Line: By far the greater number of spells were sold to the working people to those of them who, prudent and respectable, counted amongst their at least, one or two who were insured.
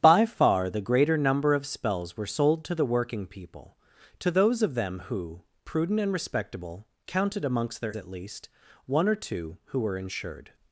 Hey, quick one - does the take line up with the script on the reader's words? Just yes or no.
yes